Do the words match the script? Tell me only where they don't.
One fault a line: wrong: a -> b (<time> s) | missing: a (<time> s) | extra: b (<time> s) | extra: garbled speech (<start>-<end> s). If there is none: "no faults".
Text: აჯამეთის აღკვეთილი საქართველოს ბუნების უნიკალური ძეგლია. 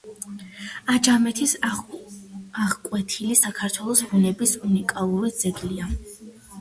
no faults